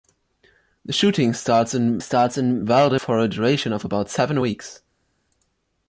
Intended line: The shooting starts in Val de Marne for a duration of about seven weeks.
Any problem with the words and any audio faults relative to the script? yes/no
yes